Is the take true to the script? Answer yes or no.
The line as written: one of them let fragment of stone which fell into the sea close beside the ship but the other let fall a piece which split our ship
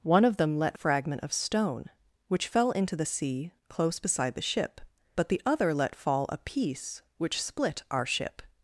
yes